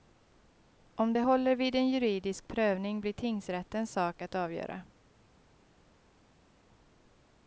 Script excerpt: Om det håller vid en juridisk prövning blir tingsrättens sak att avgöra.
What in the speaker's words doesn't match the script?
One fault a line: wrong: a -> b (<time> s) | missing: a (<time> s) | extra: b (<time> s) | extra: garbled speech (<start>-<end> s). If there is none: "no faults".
no faults